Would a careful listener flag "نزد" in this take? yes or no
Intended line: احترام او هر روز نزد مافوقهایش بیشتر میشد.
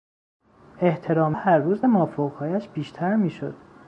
yes